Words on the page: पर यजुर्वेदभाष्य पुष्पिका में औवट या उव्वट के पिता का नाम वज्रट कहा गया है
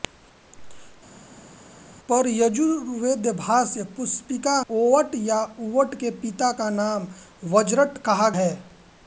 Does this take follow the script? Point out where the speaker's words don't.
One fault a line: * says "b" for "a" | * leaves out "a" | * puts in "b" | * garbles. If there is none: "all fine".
* leaves out "में"
* leaves out "गया"